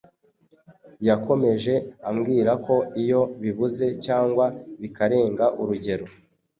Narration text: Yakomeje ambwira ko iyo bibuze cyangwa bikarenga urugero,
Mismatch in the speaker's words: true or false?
false